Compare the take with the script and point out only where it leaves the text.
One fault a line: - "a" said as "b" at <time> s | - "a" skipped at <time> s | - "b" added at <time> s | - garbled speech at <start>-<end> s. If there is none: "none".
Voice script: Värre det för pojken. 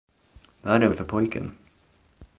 none